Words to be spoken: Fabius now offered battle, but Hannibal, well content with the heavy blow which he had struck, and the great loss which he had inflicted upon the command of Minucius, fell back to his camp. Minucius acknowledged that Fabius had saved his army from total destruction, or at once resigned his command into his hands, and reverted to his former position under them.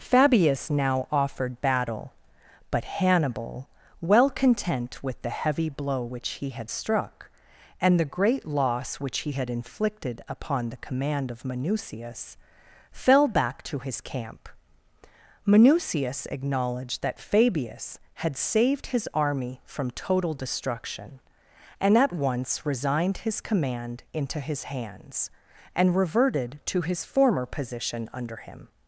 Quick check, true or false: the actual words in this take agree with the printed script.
false